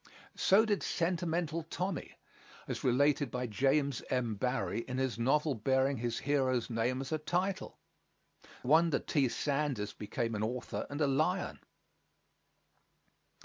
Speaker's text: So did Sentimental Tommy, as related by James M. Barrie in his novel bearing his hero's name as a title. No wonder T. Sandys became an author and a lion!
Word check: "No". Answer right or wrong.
wrong